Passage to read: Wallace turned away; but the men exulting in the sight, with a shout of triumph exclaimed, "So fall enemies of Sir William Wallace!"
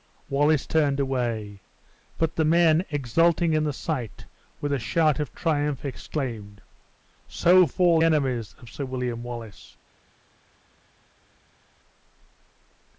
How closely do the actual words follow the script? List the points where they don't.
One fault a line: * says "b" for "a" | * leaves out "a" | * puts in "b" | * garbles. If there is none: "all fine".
all fine